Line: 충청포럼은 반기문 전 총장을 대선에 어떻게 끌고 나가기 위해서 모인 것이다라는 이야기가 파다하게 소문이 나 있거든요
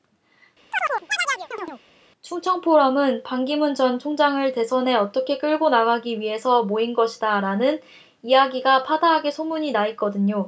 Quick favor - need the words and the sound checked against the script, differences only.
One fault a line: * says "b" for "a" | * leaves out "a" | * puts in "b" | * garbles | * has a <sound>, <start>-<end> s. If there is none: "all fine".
* has a chirp, 0.7-1.8 s